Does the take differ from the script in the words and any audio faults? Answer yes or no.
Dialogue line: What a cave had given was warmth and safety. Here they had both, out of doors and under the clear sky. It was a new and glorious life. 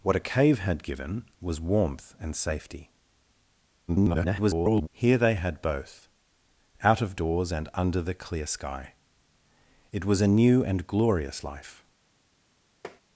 yes